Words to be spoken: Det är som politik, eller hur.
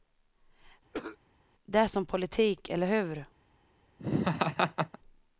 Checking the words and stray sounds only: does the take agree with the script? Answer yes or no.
no